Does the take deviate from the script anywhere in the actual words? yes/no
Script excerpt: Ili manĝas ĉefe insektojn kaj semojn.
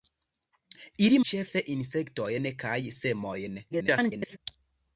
yes